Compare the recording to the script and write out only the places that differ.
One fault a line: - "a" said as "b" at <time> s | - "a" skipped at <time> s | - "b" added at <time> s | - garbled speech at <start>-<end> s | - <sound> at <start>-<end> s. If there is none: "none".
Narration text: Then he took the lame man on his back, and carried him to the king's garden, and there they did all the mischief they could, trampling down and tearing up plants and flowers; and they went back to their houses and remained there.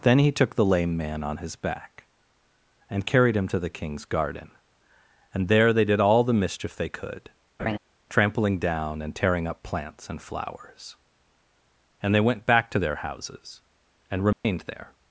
- laugh at 7.6-7.8 s
- dropout at 14.3-14.4 s